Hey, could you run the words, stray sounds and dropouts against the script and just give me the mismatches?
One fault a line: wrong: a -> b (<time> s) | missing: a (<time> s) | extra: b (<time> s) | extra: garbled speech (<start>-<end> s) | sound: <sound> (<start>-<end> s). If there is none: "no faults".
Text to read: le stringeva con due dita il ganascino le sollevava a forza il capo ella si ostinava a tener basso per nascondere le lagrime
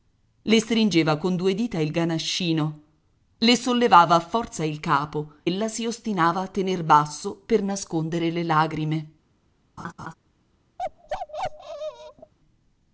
sound: laugh (9.8-10.1 s)
sound: bark (10.8-12.3 s)